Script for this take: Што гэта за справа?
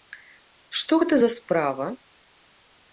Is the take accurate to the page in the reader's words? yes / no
yes